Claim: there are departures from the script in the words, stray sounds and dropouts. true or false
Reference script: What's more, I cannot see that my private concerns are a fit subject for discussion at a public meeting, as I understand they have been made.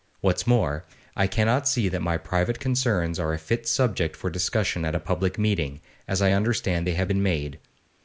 false